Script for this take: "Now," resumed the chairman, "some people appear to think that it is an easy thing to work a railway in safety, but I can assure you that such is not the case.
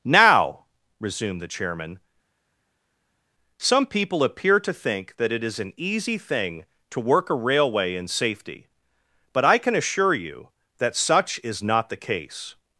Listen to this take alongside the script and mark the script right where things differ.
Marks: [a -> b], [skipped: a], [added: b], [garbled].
"Now," resumed the chairman, "some people appear to think that it is an easy thing to work a railway in safety, but I can assure you that such is not the case.